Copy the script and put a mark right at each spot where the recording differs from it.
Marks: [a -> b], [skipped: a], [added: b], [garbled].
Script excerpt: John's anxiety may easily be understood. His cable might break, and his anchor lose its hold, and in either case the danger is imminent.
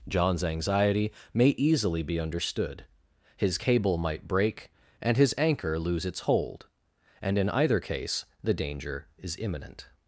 John's anxiety may easily be understood. His cable might break, and his anchor lose its hold, and in either case the danger is imminent.